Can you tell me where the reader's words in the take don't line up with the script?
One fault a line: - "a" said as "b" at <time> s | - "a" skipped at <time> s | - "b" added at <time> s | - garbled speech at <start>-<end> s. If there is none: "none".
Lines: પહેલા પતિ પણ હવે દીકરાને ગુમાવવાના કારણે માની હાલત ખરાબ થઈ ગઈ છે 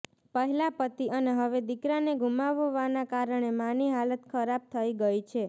- "પણ" said as "અને" at 1.1 s